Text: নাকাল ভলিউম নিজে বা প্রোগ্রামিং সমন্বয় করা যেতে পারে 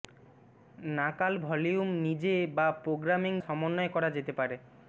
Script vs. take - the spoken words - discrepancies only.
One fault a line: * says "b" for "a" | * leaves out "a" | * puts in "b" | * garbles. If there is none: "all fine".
all fine